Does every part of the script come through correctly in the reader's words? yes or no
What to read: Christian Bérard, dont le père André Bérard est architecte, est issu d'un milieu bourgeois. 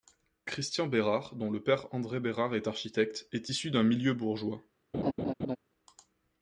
yes